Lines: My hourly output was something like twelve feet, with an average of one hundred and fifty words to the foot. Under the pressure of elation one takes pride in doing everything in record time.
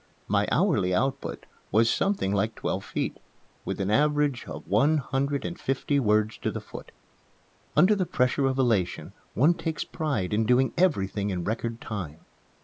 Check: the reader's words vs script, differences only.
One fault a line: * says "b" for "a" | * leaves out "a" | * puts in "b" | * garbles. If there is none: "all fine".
all fine